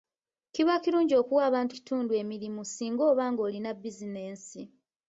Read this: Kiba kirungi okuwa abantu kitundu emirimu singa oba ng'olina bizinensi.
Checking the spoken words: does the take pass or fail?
pass